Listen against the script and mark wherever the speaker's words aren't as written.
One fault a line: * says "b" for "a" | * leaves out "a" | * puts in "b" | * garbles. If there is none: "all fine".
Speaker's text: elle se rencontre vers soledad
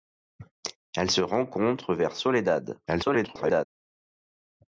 * garbles